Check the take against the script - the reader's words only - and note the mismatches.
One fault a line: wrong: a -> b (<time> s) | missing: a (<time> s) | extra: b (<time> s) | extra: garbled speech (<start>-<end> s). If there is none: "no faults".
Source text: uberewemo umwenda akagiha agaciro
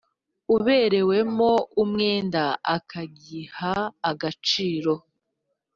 no faults